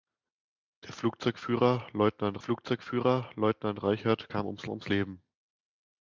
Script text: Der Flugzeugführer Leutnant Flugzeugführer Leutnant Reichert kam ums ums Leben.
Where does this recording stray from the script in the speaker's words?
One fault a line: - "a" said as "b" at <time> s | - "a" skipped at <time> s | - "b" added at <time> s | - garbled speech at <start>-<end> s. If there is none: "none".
none